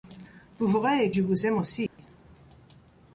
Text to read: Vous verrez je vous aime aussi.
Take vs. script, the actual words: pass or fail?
pass